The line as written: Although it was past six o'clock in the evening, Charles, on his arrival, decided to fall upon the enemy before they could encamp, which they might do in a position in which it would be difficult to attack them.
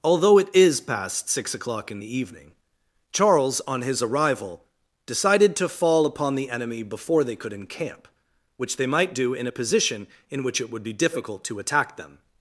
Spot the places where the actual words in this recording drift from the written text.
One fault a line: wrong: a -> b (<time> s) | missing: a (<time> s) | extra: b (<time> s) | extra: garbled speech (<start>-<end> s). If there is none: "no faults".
wrong: was -> is (0.5 s)